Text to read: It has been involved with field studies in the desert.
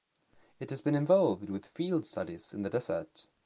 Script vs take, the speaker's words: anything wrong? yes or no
no